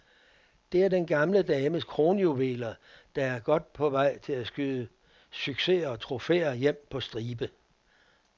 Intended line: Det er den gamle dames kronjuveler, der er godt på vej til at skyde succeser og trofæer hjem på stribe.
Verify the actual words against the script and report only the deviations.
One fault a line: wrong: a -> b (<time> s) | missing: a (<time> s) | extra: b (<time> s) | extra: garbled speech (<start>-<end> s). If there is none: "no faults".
no faults